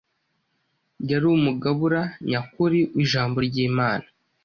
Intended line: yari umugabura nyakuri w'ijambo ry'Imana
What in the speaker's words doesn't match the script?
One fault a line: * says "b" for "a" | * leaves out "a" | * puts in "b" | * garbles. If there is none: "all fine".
all fine